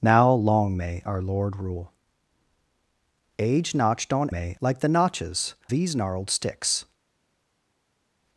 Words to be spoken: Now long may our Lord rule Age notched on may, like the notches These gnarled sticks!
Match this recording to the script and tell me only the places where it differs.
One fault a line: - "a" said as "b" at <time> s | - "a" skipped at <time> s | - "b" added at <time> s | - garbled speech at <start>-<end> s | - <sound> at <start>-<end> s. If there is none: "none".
none